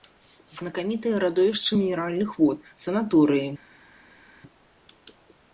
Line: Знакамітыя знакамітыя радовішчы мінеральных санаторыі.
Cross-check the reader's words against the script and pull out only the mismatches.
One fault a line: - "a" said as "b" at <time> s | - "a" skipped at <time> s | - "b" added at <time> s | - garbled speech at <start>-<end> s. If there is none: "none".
- "знакамітыя" skipped at 1.2 s
- "вод" added at 2.4 s